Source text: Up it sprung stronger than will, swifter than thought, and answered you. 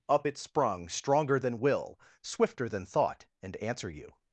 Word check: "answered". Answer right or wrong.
wrong